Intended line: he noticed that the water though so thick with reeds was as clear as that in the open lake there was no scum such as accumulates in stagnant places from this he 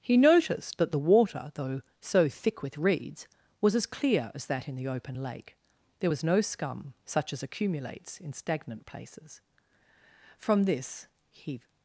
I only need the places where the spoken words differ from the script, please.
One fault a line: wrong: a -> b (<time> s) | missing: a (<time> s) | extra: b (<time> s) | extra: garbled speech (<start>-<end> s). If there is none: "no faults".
no faults